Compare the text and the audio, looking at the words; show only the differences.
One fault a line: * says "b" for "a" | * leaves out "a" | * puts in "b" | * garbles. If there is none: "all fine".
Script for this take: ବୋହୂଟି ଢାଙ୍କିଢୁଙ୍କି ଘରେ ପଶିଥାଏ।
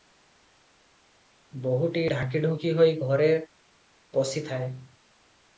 * puts in "ହୋଇ"